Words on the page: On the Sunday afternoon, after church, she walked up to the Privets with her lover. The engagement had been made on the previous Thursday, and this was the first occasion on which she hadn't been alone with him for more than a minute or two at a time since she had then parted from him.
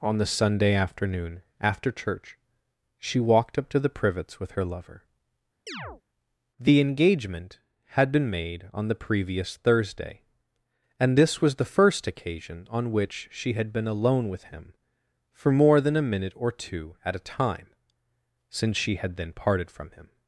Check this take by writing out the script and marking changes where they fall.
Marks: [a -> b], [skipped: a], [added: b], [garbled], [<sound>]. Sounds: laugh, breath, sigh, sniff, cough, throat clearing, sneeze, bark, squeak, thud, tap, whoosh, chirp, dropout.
On the Sunday afternoon, after church, she walked up to the Privets with her lover. [chirp] The engagement had been made on the previous Thursday, and this was the first occasion on which she [hadn't -> had] been alone with him for more than a minute or two at a time since she had then parted from him.